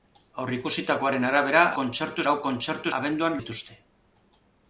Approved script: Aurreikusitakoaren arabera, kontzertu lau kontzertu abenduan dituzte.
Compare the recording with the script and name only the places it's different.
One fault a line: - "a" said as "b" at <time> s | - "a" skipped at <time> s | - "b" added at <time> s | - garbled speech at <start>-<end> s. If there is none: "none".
none